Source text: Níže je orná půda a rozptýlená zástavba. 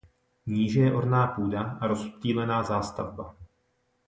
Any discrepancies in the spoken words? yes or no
no